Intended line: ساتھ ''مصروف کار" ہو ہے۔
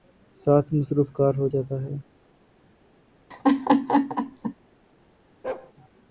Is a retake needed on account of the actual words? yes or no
yes